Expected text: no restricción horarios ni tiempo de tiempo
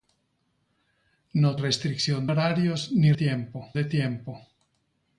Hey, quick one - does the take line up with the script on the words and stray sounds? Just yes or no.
yes